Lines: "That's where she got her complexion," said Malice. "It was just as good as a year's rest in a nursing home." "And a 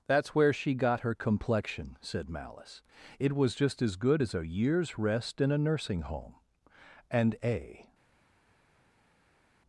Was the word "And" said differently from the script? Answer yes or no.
no